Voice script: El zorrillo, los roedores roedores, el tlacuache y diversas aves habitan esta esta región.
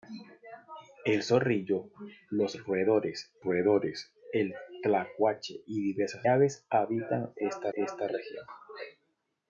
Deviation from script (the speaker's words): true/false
false